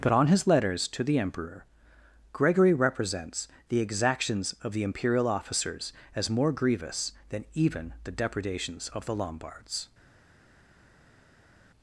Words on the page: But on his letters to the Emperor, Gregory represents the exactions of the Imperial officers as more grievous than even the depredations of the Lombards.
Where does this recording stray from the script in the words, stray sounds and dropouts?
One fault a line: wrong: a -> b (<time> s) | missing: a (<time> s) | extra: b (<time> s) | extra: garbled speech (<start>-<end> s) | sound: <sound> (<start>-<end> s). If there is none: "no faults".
no faults